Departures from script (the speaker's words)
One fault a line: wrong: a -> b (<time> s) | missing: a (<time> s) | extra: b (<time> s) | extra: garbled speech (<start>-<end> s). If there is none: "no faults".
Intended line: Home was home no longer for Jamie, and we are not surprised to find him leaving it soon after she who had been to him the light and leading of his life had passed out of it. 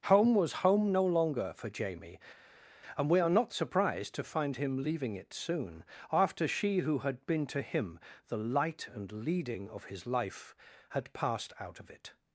no faults